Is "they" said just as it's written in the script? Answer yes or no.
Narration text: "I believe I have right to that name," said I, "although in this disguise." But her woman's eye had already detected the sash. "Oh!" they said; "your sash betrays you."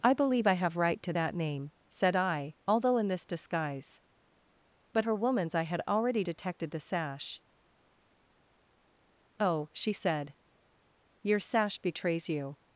no